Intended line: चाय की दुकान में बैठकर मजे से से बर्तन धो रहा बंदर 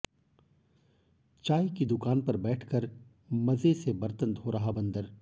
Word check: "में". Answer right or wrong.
wrong